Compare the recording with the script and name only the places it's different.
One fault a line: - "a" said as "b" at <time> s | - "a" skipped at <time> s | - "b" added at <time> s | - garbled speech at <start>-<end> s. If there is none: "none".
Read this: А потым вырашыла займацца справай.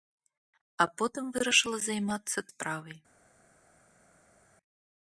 none